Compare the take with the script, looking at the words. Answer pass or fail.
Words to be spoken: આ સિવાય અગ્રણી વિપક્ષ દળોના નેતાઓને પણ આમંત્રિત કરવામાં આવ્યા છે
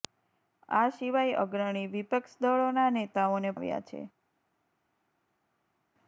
fail